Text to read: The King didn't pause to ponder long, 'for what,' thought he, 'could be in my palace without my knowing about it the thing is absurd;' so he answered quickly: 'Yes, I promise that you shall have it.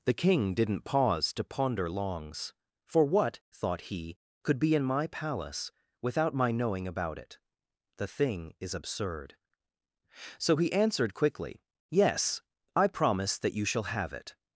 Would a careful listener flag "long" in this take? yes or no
yes